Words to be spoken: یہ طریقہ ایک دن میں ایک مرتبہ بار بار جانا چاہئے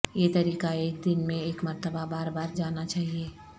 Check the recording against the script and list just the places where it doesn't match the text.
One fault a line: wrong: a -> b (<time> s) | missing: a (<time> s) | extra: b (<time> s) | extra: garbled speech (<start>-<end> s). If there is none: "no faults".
no faults